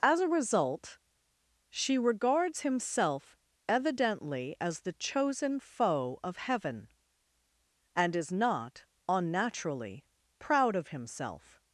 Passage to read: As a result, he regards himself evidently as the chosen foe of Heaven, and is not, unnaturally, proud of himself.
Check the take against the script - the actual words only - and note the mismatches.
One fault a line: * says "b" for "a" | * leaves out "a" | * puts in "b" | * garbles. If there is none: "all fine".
* says "she" for "he"